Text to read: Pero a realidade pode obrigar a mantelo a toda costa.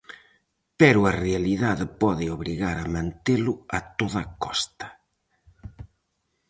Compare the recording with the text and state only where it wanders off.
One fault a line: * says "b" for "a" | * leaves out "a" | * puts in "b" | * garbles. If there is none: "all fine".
all fine